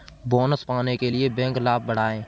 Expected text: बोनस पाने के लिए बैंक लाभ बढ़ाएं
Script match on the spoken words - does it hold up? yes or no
yes